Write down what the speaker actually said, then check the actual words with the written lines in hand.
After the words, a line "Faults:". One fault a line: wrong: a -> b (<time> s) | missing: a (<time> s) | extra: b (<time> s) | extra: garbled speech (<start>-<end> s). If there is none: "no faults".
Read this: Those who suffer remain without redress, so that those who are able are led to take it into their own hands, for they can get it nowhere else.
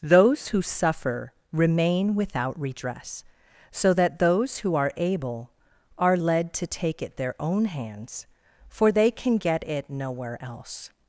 Those who suffer remain without redress, so that those who are able are led to take it their own hands, for they can get it nowhere else.
Faults:
missing: into (7.2 s)